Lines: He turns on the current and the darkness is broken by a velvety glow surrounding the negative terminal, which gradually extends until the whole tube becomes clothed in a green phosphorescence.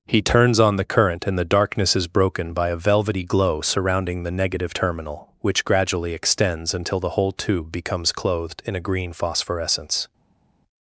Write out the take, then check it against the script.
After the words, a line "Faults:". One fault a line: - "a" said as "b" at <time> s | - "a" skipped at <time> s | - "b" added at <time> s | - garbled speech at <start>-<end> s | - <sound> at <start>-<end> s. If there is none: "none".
He turns on the current and the darkness is broken by a velvety glow surrounding the negative terminal, which gradually extends until the whole tube becomes clothed in a green phosphorescence.
Faults:
none